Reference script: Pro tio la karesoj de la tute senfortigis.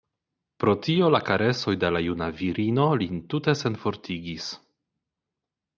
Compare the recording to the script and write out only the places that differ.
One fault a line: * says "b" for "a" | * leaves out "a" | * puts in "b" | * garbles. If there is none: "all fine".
* puts in "juna virino lin"